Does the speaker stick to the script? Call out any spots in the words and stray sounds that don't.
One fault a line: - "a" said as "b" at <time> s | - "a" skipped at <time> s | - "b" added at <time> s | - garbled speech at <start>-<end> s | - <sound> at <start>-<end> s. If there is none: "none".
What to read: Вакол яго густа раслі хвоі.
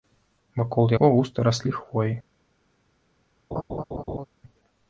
- laugh at 3.5-4.3 s